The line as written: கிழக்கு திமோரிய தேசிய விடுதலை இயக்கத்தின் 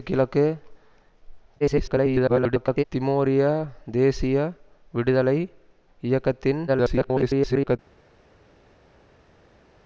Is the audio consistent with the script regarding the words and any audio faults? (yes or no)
no